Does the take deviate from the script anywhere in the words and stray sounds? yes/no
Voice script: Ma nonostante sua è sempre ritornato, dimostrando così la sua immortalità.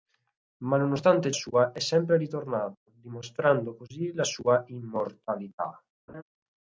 yes